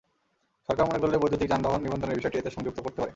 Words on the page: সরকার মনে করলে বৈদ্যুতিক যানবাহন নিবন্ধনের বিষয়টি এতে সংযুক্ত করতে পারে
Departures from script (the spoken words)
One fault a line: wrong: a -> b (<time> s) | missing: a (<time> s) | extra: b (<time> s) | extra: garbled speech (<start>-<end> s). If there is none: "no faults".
no faults